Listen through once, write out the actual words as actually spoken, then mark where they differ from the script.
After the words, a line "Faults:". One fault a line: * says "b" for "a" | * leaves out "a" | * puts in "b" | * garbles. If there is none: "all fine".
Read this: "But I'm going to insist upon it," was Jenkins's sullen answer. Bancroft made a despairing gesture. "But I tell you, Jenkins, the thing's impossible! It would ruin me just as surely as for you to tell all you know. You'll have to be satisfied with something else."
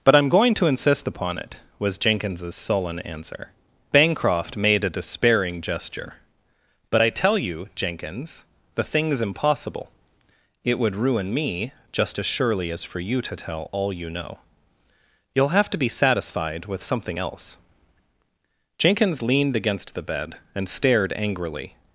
"But I'm going to insist upon it," was Jenkins's sullen answer. Bancroft made a despairing gesture. "But I tell you, Jenkins, the thing's impossible! It would ruin me just as surely as for you to tell all you know. You'll have to be satisfied with something else." Jenkins leaned against the bed and stared angrily
Faults:
* puts in "Jenkins leaned against the bed and stared angrily"